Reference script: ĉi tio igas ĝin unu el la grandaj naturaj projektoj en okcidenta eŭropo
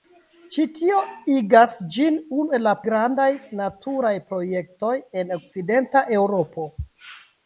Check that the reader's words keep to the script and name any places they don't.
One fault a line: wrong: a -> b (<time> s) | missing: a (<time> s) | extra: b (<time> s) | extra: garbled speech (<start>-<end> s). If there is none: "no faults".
no faults